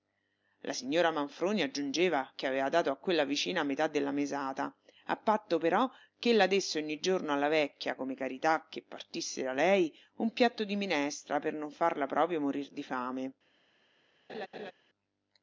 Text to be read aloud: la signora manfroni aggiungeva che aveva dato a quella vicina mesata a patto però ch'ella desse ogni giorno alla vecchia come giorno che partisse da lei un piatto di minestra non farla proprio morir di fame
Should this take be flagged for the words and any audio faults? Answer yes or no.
yes